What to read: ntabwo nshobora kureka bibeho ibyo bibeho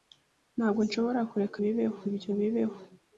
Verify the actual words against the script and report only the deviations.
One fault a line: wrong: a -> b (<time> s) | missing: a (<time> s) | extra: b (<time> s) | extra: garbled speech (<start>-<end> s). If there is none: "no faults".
no faults